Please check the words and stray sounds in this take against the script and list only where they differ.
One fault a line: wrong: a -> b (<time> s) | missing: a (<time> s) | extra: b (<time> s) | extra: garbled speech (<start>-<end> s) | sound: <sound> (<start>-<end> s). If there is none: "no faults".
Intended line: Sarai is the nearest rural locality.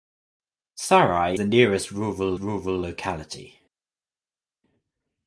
missing: is (1.4 s)
extra: rural (2.4 s)